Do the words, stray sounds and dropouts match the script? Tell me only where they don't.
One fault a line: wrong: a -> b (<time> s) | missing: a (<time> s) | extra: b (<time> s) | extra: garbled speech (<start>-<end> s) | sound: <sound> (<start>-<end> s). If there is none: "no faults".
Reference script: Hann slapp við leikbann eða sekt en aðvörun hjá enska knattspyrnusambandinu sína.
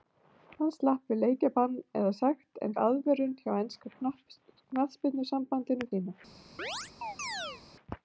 sound: chirp (6.6-7.6 s)